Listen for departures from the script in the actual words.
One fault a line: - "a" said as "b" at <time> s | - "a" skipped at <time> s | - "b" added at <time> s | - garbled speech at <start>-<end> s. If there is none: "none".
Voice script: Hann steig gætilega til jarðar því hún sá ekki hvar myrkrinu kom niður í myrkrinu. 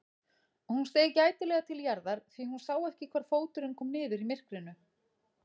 - "Hann" said as "Hún" at 0.7 s
- "myrkrinu" said as "fóturinn" at 3.3 s